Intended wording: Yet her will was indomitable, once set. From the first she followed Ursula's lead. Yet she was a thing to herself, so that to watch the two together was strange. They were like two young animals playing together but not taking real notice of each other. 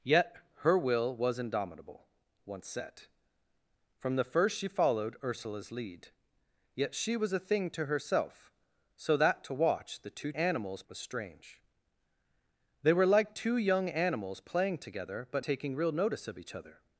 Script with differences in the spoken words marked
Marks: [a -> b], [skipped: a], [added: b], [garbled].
Yet her will was indomitable, once set. From the first she followed Ursula's lead. Yet she was a thing to herself, so that to watch the two [together -> animals] was strange. They were like two young animals playing together but [skipped: not] taking real notice of each other.